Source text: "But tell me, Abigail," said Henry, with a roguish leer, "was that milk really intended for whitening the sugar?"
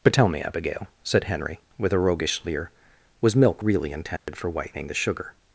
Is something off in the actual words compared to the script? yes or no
yes